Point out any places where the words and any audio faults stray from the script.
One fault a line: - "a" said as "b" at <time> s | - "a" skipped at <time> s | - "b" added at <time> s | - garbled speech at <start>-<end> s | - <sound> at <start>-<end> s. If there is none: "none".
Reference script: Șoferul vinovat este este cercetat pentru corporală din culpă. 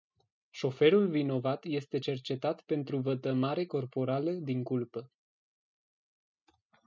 - "este" skipped at 2.0 s
- "vătămare" added at 3.0 s